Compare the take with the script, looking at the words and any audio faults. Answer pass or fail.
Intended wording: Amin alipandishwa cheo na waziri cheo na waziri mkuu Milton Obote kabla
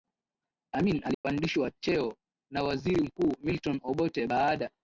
fail